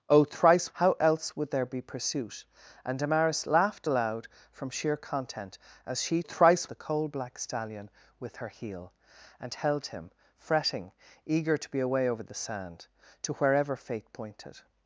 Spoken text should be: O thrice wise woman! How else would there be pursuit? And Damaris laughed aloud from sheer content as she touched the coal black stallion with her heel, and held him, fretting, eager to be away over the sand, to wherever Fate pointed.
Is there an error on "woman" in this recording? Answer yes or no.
yes